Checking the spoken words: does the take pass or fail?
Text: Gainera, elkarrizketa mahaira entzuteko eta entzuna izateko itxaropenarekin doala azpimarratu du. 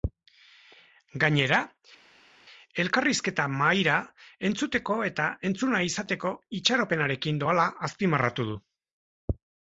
pass